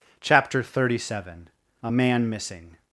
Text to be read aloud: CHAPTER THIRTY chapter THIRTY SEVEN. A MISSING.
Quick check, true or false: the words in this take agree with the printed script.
false